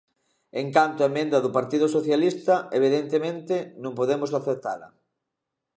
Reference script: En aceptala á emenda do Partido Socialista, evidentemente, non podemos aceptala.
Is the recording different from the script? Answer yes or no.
yes